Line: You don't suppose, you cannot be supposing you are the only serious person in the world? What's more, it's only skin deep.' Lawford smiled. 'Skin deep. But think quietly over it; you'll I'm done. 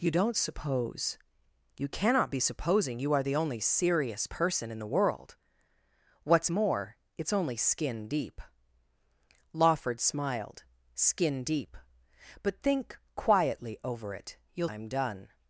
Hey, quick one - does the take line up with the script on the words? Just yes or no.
yes